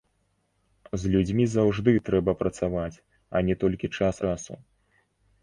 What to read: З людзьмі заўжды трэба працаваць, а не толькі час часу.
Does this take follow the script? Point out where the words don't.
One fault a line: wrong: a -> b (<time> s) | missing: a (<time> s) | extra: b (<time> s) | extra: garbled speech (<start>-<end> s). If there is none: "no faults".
no faults